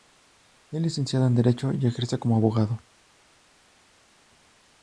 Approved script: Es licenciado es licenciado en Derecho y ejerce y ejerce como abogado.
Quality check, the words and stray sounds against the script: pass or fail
fail